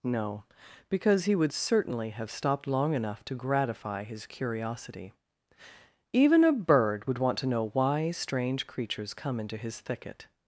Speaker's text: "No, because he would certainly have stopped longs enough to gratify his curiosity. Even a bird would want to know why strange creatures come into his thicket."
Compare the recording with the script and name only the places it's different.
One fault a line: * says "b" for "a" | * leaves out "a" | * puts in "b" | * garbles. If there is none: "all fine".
* says "long" for "longs"